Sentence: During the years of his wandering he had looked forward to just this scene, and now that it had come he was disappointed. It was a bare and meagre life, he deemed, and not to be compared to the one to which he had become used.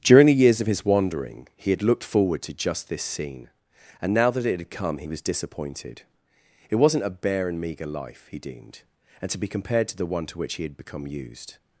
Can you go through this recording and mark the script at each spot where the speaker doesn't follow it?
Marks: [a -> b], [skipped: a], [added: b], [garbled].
During the years of his wandering he had looked forward to just this scene, and now that it had come he was disappointed. It [was -> wasn't] a bare and meagre life, he deemed, and [skipped: not] to be compared to the one to which he had become used.